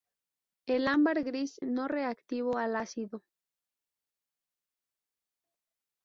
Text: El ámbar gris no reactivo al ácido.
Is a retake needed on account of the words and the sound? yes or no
no